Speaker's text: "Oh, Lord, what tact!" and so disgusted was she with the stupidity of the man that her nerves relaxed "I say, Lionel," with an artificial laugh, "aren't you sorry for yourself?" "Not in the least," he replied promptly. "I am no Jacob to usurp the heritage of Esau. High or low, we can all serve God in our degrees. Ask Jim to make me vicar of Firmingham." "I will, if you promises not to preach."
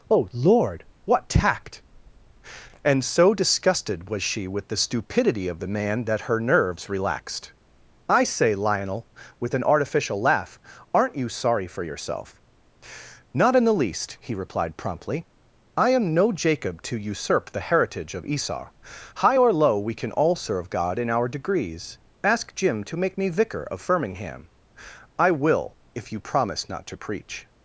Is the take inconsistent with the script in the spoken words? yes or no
yes